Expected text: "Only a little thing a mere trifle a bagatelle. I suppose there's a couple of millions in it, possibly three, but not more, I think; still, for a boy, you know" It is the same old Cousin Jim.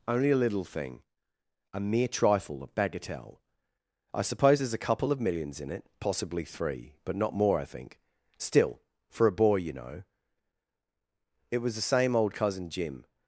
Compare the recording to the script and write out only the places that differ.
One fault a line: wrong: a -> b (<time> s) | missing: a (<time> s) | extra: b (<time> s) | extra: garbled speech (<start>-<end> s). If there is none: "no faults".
wrong: is -> was (11.6 s)